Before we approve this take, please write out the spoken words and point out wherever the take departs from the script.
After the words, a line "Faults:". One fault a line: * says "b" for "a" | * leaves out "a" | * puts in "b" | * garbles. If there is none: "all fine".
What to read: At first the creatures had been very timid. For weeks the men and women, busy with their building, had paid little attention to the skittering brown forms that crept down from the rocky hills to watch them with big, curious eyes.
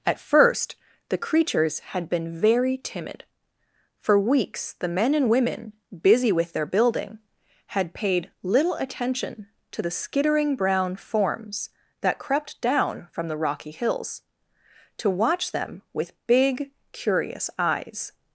At first the creatures had been very timid. For weeks the men and women, busy with their building, had paid little attention to the skittering brown forms that crept down from the rocky hills to watch them with big, curious eyes.
Faults:
all fine